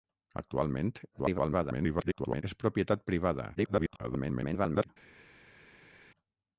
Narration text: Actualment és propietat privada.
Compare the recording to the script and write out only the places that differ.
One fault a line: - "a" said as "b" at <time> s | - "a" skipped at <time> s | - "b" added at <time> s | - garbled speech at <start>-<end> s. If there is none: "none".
- garbled speech at 1.1-2.4 s
- garbled speech at 3.5-4.9 s